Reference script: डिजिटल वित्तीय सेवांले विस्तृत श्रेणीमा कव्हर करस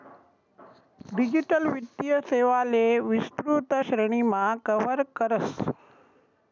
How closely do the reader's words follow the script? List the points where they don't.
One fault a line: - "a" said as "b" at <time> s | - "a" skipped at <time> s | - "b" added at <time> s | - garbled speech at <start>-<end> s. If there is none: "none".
none